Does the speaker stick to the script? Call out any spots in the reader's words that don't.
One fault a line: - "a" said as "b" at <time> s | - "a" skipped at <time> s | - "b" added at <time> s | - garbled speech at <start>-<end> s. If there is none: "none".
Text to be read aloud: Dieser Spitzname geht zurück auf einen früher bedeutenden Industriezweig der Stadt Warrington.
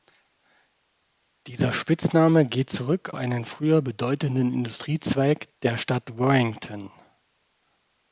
- "auf" skipped at 3.1 s